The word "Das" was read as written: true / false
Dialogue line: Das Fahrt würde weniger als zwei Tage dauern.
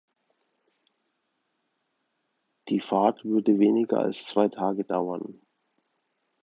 false